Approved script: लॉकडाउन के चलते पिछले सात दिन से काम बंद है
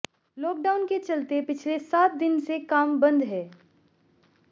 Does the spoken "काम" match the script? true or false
true